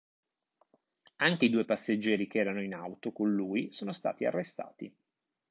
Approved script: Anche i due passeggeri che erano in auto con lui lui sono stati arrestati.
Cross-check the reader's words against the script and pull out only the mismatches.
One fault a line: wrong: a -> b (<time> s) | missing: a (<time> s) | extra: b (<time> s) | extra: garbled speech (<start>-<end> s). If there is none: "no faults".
missing: lui (3.7 s)